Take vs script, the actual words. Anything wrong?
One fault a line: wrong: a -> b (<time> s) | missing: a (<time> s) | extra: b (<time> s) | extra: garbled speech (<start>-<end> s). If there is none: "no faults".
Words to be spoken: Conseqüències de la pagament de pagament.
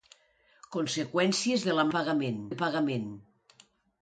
no faults